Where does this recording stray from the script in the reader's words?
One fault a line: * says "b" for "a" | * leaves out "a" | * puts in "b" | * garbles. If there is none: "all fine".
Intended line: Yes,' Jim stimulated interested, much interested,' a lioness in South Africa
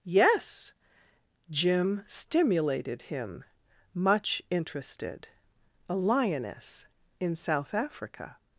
* says "him" for "interested"